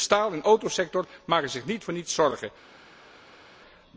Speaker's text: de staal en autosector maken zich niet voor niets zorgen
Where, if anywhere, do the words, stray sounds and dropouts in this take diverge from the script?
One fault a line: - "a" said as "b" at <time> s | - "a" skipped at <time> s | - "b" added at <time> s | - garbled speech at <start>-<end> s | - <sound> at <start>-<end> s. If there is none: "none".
none